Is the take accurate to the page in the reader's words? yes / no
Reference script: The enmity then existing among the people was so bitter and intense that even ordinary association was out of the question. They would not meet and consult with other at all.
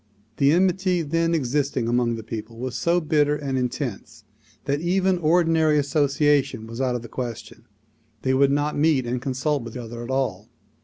yes